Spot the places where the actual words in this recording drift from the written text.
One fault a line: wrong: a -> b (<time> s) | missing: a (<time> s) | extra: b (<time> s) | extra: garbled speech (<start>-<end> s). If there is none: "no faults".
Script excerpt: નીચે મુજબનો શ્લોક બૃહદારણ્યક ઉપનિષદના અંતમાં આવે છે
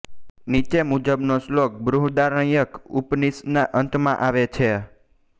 no faults